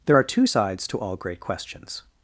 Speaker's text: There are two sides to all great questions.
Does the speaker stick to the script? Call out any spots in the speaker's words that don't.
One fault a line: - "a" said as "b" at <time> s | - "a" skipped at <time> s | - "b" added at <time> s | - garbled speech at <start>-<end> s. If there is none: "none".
none